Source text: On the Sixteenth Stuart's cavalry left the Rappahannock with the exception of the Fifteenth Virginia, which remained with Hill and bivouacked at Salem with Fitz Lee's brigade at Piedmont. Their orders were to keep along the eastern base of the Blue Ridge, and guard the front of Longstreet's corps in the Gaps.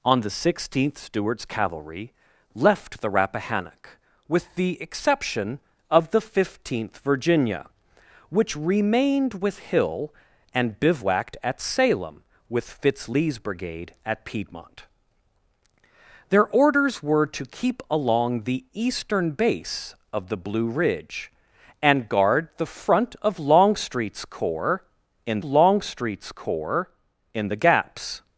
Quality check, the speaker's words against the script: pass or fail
fail